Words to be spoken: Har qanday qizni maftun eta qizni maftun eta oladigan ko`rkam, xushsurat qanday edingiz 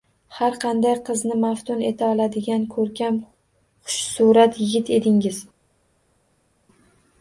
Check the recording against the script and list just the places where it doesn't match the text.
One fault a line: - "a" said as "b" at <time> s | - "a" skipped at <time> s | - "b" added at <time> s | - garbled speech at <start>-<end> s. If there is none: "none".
- "qizni maftun eta" skipped at 2.1 s
- "qanday" said as "yigit" at 4.6 s